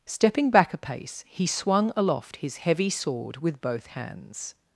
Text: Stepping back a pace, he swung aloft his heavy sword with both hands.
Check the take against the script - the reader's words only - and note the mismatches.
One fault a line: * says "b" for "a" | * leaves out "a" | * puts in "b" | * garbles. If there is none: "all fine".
all fine